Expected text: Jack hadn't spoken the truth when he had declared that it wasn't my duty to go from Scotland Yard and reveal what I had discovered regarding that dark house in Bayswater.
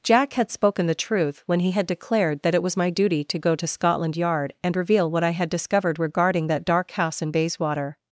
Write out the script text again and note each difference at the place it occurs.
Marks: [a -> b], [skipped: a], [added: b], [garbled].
Jack [hadn't -> had] spoken the truth when he had declared that it [wasn't -> was] my duty to go [from -> to] Scotland Yard and reveal what I had discovered regarding that dark house in Bayswater.